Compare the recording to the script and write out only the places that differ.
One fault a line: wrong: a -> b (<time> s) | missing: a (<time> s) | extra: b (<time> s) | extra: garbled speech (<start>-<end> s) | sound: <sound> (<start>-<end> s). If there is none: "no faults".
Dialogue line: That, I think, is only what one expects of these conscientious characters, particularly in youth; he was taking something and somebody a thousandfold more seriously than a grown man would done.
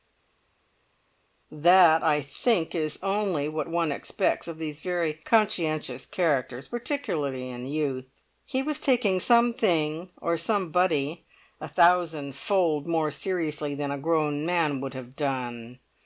extra: very (4.8 s)
wrong: and -> or (10.2 s)
extra: have (14.9 s)